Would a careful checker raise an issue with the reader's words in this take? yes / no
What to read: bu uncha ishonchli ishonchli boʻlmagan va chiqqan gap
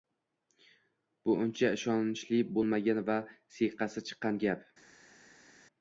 yes